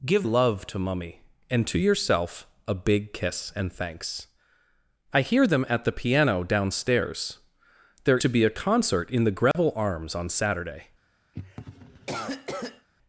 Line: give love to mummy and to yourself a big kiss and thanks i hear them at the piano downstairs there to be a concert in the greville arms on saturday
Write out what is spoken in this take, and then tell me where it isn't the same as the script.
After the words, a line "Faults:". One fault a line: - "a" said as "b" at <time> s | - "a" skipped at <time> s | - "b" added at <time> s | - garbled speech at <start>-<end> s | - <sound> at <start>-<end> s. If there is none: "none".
give love to mummy and to yourself a big kiss and thanks i hear them at the piano downstairs there to be a concert in the greville arms on saturday
Faults:
- dropout at 9.5-9.5 s
- cough at 11.3-12.9 s